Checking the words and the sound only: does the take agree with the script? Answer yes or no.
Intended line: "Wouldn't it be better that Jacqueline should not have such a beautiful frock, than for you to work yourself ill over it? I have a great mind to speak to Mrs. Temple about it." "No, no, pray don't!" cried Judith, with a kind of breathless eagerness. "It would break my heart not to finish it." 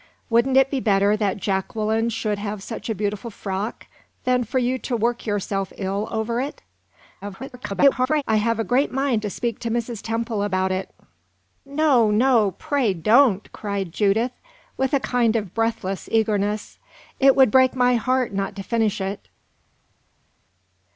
no